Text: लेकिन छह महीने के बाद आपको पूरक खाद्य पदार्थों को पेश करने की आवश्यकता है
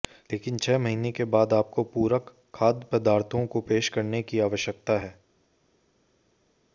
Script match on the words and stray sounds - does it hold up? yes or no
yes